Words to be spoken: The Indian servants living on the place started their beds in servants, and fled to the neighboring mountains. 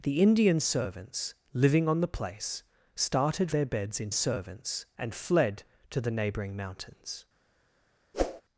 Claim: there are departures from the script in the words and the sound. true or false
true